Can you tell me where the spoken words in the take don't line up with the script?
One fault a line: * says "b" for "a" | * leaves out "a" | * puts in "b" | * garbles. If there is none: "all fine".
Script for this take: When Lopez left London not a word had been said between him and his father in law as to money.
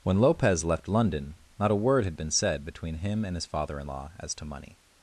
all fine